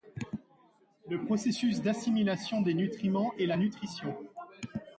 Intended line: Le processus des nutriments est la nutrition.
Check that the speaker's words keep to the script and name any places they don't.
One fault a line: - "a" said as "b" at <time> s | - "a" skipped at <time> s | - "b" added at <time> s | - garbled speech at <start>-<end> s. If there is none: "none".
- "d'assimilation" added at 1.8 s